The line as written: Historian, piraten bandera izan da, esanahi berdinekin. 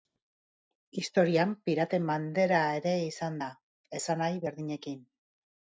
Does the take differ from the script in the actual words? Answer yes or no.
yes